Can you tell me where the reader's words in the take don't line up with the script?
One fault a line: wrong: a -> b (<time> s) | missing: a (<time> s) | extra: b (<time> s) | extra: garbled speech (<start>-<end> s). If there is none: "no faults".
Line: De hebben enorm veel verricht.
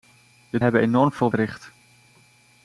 no faults